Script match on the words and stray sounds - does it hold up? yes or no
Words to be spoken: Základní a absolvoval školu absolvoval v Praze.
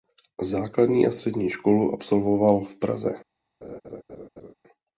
no